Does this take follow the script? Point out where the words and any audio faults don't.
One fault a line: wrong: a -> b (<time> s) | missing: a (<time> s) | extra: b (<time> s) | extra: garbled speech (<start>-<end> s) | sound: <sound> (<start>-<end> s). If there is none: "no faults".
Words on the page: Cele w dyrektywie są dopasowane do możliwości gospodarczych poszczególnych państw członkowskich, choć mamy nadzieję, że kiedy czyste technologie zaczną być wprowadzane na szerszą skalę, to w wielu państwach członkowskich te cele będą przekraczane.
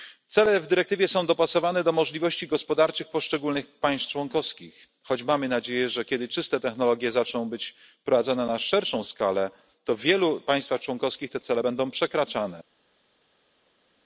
no faults